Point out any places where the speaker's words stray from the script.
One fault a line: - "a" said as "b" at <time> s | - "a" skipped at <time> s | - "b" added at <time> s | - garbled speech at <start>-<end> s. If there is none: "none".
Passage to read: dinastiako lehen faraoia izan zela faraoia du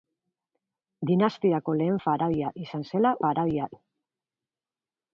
none